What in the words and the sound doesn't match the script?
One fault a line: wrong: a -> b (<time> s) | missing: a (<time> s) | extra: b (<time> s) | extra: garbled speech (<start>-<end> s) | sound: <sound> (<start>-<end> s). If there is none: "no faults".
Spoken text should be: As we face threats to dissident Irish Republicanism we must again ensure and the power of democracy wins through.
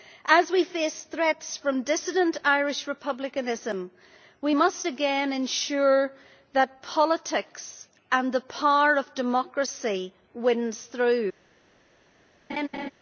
wrong: to -> from (1.6 s)
extra: that politics (6.5 s)
sound: laugh (12.5-12.9 s)